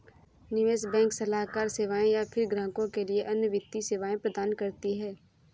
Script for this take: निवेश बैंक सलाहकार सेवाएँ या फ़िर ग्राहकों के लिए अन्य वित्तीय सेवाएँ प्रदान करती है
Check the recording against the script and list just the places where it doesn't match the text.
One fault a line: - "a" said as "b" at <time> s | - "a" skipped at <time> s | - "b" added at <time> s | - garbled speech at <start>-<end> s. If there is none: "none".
none